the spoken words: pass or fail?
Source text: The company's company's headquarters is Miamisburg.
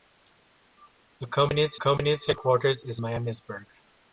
pass